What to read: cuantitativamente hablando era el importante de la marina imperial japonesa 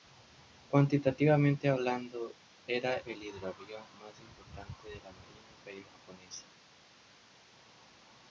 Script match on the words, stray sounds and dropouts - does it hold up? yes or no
no